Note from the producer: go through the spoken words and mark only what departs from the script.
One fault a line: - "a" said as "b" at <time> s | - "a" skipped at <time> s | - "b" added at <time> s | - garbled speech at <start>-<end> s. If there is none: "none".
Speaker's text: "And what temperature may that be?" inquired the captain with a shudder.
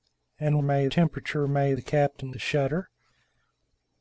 - "what" said as "may" at 0.6 s
- "that be inquired" skipped at 1.7 s
- "with" skipped at 2.3 s